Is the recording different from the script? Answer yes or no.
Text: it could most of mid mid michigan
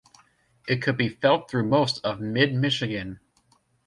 yes